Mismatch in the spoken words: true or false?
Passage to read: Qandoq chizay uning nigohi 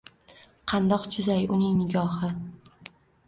false